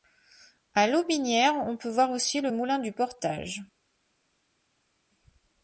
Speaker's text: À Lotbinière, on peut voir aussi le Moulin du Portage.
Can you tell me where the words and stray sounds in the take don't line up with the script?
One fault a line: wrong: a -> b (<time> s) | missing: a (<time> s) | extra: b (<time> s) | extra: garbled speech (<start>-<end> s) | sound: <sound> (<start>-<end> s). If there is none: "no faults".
no faults